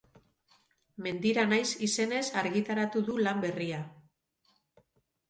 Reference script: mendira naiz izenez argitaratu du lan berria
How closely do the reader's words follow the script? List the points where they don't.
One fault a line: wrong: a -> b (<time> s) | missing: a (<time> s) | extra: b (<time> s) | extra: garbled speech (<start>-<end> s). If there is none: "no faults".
no faults